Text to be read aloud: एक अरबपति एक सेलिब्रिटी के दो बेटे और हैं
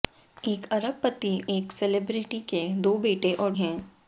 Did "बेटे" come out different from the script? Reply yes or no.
no